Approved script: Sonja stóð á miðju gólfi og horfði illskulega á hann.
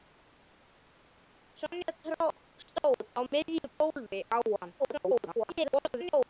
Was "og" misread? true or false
true